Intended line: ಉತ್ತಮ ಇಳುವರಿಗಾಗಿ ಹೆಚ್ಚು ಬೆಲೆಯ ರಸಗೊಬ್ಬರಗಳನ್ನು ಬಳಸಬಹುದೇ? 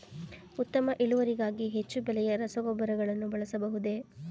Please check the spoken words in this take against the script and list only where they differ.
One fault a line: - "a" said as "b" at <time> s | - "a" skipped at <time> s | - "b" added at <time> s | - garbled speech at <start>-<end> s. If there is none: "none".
none